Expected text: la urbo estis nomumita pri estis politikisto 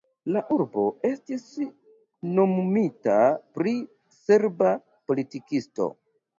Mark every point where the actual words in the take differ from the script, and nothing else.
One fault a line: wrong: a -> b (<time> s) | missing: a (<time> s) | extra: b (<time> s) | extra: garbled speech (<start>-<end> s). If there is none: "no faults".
wrong: estis -> serba (4.2 s)